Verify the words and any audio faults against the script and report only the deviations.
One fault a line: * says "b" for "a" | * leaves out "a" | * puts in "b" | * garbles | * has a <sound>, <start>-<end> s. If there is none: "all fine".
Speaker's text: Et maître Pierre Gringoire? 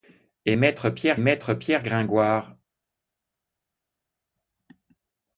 * puts in "maître Pierre"